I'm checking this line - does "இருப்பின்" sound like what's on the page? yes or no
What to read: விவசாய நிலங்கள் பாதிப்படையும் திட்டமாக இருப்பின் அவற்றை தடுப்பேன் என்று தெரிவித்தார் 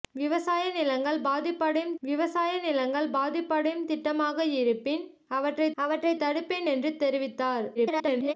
yes